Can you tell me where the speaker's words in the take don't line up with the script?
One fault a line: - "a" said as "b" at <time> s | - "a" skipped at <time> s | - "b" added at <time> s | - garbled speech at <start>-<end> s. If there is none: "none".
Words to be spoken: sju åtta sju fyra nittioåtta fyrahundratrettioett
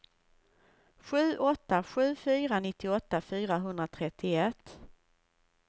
none